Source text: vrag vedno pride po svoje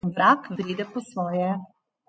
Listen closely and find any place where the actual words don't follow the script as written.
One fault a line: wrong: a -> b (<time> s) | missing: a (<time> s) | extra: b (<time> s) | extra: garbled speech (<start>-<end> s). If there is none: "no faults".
missing: vedno (0.5 s)